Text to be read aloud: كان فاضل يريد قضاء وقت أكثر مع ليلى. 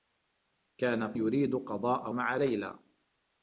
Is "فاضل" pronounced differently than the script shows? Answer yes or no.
yes